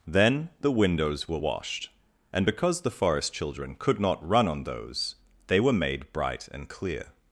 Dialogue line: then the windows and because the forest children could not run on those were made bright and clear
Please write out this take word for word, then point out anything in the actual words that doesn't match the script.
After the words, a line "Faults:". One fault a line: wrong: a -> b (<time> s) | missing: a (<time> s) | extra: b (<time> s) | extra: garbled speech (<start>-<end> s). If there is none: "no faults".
then the windows were washed and because the forest children could not run on those they were made bright and clear
Faults:
extra: were washed (1.3 s)
extra: they (5.5 s)